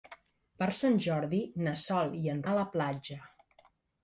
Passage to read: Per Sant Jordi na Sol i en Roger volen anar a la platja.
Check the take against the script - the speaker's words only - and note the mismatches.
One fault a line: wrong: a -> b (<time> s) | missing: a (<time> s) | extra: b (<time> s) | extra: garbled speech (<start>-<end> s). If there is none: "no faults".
missing: Roger volen anar (2.4 s)